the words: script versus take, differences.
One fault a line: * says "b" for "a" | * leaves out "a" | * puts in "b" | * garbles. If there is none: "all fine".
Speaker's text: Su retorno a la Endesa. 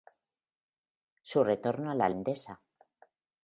all fine